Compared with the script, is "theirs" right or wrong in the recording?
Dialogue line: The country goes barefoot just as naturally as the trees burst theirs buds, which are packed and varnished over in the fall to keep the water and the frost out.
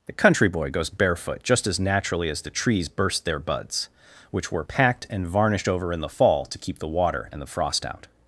wrong